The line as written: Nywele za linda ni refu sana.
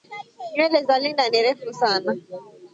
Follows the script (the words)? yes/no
yes